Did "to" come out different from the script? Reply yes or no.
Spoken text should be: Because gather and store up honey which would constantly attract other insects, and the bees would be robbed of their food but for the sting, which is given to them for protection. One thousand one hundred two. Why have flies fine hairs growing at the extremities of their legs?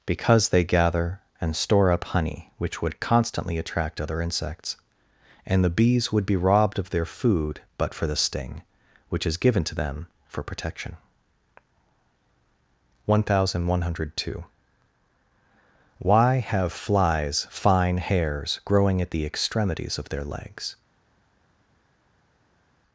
no